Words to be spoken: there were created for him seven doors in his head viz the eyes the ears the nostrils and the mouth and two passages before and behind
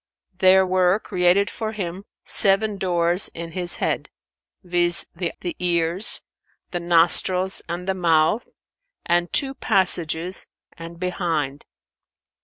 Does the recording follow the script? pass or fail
fail